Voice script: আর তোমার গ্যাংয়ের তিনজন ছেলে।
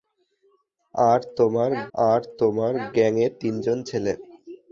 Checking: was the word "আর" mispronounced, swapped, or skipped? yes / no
no